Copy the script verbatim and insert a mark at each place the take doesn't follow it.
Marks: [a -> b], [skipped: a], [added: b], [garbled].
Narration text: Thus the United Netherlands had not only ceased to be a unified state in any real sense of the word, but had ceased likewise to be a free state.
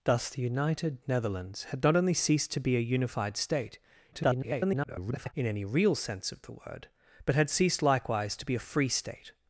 Thus the United Netherlands had not only ceased to be a unified state [garbled] in any real sense of the word, but had ceased likewise to be a free state.